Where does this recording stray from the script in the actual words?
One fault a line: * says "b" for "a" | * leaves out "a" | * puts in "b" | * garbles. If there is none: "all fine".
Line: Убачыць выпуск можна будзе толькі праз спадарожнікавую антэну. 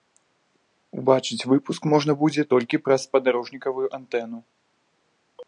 all fine